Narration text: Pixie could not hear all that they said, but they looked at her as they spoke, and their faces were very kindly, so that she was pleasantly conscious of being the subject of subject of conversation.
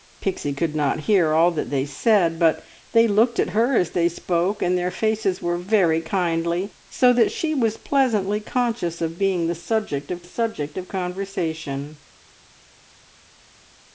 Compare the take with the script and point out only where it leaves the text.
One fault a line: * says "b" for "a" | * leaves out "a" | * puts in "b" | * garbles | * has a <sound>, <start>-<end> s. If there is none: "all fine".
all fine